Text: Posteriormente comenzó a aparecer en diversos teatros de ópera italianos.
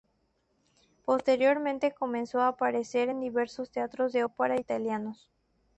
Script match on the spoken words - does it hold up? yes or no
yes